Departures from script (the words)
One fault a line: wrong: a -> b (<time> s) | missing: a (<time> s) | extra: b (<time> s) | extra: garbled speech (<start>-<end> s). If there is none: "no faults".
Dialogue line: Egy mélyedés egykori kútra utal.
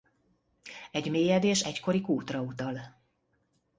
no faults